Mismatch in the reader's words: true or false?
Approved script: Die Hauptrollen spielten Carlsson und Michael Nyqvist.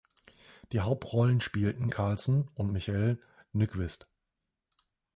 false